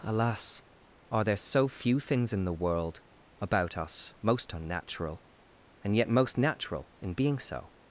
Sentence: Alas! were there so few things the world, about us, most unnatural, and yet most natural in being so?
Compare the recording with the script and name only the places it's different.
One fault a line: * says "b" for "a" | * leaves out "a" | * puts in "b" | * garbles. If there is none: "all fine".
* says "are" for "were"
* puts in "in"